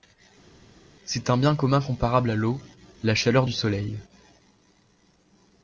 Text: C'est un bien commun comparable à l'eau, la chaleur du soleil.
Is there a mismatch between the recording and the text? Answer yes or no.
no